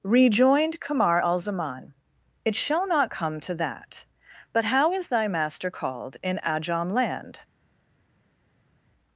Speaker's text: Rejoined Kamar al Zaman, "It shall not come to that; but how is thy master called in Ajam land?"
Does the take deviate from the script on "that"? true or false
false